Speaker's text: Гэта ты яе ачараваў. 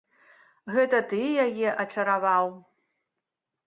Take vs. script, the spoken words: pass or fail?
pass